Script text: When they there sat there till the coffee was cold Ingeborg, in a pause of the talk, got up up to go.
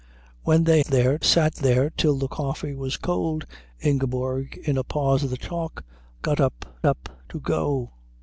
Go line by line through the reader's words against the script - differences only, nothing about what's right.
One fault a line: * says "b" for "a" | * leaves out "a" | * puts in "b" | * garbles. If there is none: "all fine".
all fine